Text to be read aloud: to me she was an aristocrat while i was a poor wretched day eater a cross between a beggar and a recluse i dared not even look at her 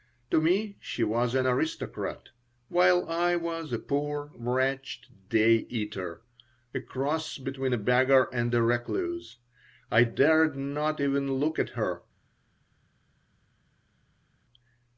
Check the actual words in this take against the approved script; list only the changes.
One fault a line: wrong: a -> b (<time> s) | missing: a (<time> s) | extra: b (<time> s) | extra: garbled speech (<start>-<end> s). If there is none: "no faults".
no faults